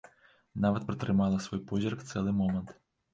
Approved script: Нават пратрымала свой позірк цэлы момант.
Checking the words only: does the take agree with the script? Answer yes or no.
yes